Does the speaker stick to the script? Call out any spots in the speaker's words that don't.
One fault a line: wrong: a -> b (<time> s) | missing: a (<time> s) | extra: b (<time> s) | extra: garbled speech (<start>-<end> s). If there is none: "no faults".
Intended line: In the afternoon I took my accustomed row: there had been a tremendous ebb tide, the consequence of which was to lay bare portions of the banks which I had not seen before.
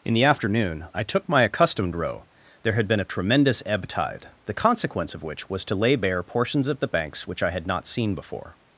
no faults